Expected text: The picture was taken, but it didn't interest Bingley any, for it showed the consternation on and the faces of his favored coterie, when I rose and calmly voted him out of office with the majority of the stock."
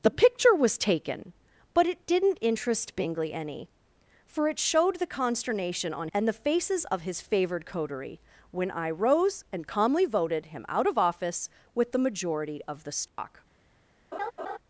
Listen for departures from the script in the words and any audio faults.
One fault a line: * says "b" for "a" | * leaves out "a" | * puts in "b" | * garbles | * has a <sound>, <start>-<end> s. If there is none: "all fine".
* has a dropout, 13.1-13.2 s
* has a laugh, 14.1-14.6 s